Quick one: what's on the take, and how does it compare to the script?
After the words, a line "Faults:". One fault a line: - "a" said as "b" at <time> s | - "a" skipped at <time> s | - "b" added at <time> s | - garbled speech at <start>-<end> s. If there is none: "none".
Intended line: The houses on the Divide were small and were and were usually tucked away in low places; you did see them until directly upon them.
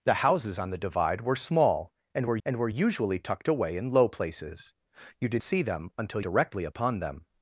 The houses on the Divide were small and were and were usually tucked away in low places; you did see them until directly upon them.
Faults:
none